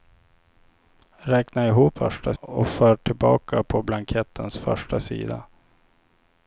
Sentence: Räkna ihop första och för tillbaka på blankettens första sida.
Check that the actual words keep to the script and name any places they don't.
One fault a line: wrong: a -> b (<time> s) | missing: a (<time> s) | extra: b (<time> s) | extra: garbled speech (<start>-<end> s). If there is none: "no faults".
no faults